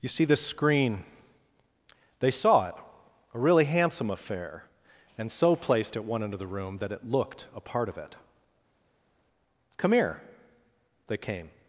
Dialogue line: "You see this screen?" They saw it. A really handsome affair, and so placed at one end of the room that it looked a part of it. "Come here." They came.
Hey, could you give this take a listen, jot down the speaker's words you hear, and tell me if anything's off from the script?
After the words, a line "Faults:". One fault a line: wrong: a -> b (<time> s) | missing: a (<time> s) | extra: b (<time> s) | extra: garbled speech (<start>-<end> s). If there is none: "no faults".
"You see this screen?" They saw it. A really handsome affair, and so placed at one end of the room that it looked a part of it. "Come here." They came.
Faults:
no faults